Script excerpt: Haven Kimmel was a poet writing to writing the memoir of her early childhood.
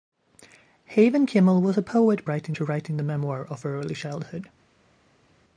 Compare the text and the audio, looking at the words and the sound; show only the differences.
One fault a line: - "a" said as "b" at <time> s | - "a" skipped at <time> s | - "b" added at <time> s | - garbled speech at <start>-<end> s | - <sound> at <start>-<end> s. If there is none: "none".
none